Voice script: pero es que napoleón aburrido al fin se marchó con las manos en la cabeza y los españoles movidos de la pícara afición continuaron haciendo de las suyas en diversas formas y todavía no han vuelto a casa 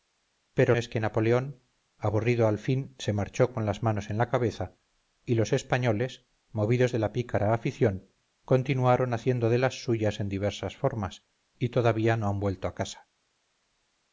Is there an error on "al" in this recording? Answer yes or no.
no